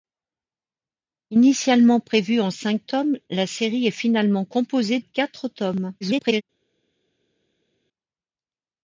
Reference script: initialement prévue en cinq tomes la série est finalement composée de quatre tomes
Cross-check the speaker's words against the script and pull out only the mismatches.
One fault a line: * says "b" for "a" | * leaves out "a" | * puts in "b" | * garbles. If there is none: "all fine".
* leaves out "de"
* garbles